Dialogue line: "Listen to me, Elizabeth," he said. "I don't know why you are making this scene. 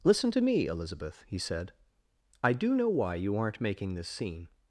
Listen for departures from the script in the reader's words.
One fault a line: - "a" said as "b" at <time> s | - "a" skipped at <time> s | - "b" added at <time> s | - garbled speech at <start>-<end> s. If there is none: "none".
- "don't" said as "do" at 2.5 s
- "are" said as "aren't" at 3.4 s